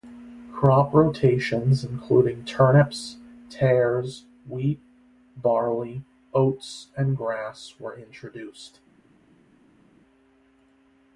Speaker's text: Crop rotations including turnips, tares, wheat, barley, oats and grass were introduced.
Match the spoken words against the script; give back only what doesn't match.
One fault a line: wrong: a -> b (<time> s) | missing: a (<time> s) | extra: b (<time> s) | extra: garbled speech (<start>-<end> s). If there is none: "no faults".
no faults